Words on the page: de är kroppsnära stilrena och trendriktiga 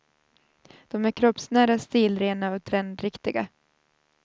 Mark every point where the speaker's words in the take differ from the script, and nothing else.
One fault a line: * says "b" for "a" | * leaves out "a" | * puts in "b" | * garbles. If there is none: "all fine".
all fine